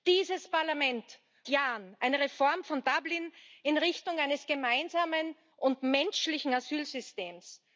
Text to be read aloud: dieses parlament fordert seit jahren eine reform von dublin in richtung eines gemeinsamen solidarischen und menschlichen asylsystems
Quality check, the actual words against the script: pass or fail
fail